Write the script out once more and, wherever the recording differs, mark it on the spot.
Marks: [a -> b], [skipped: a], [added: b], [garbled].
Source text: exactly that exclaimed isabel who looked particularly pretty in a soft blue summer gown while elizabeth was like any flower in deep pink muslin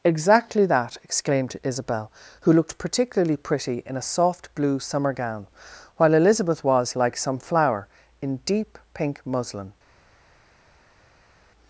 exactly that exclaimed isabel who looked particularly pretty in a soft blue summer gown while elizabeth was like [any -> some] flower in deep pink muslin